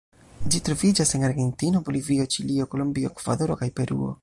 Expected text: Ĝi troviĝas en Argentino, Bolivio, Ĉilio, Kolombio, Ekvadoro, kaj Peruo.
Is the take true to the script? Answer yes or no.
yes